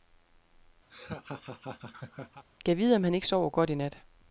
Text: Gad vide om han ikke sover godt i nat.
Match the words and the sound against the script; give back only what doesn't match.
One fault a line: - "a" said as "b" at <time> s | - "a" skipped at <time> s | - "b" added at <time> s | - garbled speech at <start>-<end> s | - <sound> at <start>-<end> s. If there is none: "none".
- laugh at 0.9-2.4 s